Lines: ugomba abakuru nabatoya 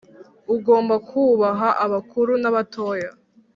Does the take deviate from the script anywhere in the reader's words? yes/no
yes